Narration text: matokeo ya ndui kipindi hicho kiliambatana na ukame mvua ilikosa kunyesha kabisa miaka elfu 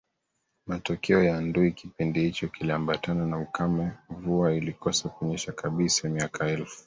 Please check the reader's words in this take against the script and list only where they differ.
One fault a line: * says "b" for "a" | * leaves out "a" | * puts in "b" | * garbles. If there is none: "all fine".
all fine